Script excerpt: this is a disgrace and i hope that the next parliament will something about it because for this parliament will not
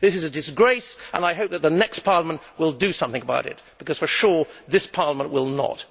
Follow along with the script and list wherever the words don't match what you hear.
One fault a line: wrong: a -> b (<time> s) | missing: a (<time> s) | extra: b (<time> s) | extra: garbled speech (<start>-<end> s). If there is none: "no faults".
extra: do (2.7 s)
extra: sure (4.1 s)